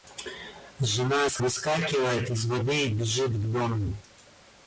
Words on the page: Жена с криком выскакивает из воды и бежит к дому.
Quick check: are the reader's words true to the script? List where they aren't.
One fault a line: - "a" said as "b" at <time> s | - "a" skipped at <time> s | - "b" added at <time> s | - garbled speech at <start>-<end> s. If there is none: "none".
- "криком" skipped at 1.4 s